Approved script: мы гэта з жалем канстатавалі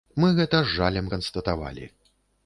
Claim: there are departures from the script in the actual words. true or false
false